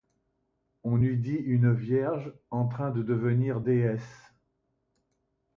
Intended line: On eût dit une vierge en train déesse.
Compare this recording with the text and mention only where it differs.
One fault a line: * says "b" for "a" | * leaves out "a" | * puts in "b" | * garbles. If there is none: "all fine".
* puts in "de devenir"